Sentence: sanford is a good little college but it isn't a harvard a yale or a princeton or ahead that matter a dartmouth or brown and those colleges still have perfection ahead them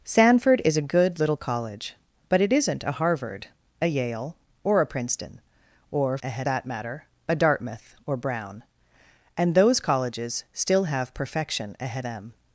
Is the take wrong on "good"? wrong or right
right